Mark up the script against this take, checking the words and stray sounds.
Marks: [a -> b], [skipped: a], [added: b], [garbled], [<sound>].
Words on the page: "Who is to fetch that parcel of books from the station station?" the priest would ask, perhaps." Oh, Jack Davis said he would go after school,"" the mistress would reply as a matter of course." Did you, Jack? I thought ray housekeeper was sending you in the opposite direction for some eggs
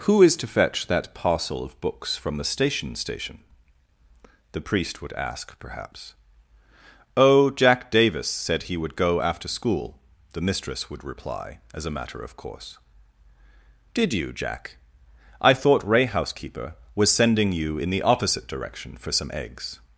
"Who is to fetch that parcel of books from the station station?" the priest would ask, perhaps." Oh, Jack Davis said he would go after school,"" the mistress would reply as a matter of course." Did you, Jack? I thought ray housekeeper was sending you in the opposite direction for some eggs